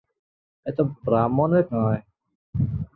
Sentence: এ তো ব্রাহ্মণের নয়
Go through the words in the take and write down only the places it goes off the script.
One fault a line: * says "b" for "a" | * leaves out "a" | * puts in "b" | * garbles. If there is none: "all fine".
all fine